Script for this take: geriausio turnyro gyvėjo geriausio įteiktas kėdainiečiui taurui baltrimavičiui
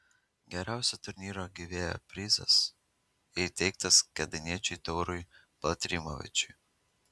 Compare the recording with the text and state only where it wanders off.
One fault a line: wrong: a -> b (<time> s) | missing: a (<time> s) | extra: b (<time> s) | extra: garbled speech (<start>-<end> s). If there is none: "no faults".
wrong: geriausio -> prizas (2.1 s)